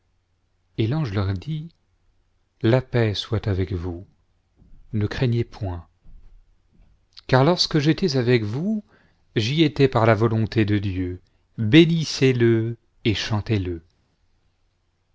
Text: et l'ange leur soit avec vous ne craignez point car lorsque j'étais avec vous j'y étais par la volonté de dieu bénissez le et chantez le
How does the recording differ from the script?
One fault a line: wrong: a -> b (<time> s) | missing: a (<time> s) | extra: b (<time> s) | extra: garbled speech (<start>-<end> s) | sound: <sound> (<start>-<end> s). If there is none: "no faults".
extra: dit la paix (1.4 s)